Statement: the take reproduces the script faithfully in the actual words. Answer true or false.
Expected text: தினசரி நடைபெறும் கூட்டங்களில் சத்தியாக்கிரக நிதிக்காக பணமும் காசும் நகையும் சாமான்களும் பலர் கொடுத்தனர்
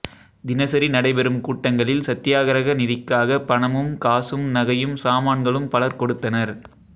true